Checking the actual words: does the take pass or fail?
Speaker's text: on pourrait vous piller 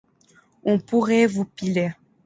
pass